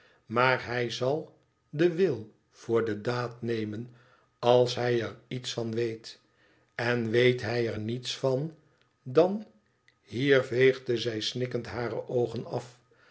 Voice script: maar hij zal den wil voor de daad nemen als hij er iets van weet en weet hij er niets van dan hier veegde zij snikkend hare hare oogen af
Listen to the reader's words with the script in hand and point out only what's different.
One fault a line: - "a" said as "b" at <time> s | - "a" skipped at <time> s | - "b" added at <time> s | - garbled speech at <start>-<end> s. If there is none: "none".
- "hare" skipped at 12.1 s